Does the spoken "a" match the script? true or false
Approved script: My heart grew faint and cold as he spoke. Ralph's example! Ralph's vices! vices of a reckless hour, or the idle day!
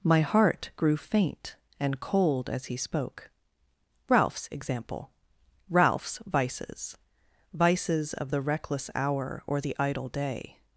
false